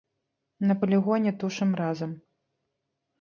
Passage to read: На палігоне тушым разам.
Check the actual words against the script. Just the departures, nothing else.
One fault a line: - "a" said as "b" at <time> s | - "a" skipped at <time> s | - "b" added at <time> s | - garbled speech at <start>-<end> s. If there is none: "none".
none